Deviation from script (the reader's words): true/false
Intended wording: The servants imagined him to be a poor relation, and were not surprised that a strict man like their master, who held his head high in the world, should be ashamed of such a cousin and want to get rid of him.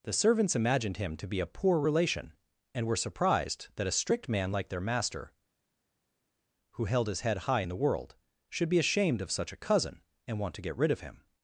true